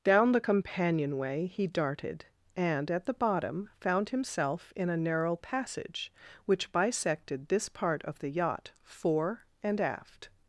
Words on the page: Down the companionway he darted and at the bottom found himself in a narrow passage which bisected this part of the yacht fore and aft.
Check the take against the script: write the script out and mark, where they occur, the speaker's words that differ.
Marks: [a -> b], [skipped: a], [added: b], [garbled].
Down the companionway he darted and at the bottom found himself in a narrow passage which bisected this part of the yacht fore and aft.